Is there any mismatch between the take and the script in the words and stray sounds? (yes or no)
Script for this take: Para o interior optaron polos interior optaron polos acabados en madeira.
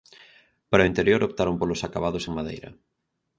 yes